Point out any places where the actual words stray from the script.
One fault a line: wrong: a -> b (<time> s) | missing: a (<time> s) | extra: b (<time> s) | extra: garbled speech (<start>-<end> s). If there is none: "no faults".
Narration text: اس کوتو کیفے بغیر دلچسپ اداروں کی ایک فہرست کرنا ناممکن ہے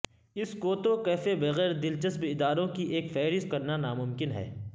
no faults